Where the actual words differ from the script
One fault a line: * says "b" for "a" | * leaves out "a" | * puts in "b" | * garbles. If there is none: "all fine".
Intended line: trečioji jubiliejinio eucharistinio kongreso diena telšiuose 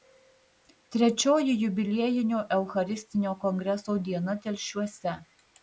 all fine